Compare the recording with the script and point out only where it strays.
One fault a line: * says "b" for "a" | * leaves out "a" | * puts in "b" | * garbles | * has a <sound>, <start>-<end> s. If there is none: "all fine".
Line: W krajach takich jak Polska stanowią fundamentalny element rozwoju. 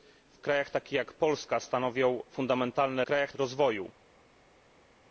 * says "krajach" for "element"